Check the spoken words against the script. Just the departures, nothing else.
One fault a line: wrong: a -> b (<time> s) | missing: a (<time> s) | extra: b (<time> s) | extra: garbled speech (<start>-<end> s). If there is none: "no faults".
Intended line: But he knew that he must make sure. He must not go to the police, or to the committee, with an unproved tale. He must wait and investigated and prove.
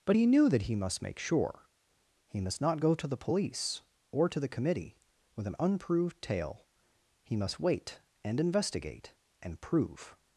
wrong: investigated -> investigate (8.4 s)